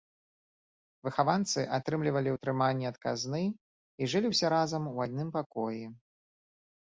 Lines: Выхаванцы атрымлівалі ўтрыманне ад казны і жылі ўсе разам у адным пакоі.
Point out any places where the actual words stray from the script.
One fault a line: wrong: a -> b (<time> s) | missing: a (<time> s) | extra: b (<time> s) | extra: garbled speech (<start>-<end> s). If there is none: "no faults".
no faults